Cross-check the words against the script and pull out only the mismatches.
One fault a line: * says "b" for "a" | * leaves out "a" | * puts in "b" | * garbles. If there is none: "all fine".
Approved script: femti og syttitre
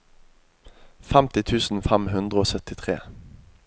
* puts in "tusen fem hundre"